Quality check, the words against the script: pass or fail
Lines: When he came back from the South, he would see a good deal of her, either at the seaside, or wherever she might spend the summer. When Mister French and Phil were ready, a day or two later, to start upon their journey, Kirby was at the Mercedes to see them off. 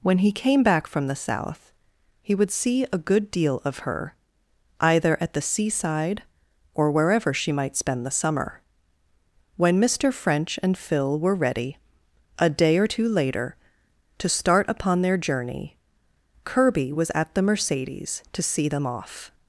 pass